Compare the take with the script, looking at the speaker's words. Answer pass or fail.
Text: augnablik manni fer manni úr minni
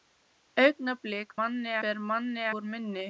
pass